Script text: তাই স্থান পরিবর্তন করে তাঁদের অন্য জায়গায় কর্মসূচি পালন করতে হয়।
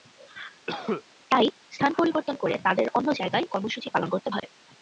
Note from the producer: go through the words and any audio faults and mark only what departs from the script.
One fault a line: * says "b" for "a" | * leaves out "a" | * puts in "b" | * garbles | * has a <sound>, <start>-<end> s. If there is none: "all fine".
* has a cough, 0.7-1.0 s
* has a dropout, 4.4-4.4 s